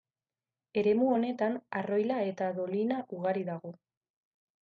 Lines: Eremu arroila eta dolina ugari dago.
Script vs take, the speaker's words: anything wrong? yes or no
yes